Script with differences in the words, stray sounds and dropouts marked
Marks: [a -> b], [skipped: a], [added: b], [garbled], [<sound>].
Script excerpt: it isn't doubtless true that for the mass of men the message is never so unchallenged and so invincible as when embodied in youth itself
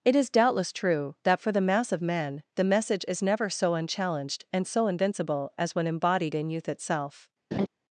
it [isn't -> is] doubtless true that for the mass of men the message is never so unchallenged and so invincible as when embodied in youth itself [laugh]